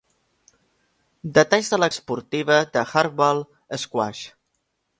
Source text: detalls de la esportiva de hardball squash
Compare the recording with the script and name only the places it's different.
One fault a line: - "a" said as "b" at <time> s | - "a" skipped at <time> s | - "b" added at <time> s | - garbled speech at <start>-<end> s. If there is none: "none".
none